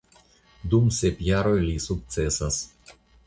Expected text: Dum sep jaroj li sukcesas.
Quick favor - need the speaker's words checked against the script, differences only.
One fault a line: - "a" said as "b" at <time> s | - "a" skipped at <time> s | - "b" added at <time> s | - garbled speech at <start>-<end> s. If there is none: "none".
none